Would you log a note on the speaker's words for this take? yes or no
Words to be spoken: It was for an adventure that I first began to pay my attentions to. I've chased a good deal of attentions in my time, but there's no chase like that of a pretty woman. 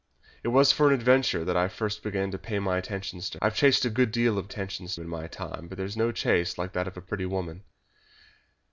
no